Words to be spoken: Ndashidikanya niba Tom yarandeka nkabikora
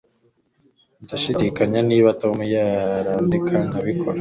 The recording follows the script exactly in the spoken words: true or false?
true